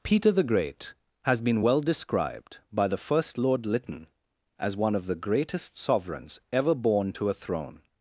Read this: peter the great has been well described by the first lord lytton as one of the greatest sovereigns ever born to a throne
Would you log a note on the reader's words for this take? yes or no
no